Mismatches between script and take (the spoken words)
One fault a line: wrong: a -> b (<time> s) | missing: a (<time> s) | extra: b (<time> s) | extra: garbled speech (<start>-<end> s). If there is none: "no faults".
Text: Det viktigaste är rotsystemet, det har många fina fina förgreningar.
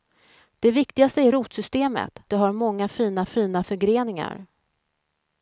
no faults